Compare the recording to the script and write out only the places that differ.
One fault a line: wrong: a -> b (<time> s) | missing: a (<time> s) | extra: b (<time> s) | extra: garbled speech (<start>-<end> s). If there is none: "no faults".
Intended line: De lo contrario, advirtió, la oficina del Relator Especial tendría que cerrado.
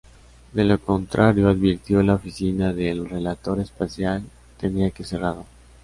no faults